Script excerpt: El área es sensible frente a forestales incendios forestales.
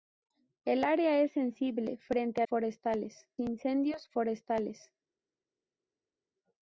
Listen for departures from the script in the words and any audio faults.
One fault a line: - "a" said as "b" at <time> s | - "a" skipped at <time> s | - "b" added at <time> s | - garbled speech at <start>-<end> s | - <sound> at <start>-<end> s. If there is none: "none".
none